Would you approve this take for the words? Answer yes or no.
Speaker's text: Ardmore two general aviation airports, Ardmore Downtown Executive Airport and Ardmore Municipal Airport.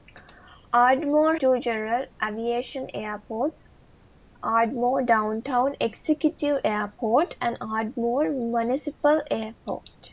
yes